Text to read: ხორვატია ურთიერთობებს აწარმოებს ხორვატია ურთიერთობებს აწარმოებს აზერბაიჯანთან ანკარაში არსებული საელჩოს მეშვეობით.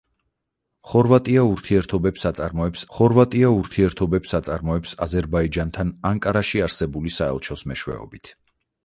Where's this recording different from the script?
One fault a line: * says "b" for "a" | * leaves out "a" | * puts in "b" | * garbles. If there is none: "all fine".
all fine